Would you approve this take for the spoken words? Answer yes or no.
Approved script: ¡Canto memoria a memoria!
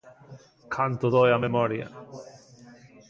no